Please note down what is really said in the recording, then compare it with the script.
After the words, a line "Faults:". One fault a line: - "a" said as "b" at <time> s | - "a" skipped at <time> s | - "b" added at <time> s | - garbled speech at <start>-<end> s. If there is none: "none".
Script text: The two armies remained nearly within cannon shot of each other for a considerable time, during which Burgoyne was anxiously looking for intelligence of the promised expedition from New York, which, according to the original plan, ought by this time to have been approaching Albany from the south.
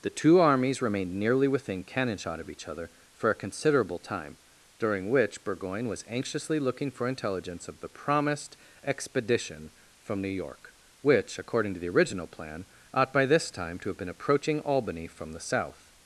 The two armies remained nearly within cannon shot of each other for a considerable time, during which Burgoyne was anxiously looking for intelligence of the promised expedition from New York, which, according to the original plan, ought by this time to have been approaching Albany from the south.
Faults:
none